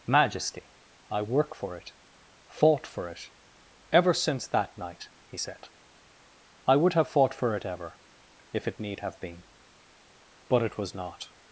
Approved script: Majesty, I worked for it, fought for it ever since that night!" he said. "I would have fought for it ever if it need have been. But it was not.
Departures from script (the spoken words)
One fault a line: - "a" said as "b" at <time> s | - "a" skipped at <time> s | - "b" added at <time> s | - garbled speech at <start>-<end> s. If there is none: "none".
- "worked" said as "work" at 1.2 s